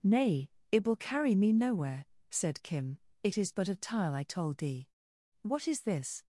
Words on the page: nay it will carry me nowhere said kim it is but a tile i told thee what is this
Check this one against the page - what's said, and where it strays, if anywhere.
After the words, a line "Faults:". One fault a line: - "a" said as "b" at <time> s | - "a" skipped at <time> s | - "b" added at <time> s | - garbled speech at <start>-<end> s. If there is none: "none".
nay it will carry me nowhere said kim it is but a tile i told thee what is this
Faults:
none